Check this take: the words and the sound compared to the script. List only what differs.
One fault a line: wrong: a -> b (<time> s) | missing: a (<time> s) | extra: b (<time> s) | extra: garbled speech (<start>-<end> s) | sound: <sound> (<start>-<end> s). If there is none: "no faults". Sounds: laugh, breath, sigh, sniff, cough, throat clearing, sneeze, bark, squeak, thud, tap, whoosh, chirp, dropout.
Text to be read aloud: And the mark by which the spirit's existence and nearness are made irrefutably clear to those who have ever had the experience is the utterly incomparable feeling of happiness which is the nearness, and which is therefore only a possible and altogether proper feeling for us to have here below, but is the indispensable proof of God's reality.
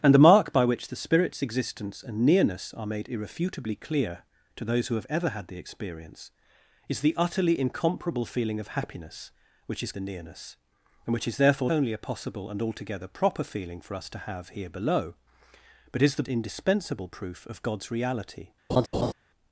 sound: laugh (18.7-19.1 s)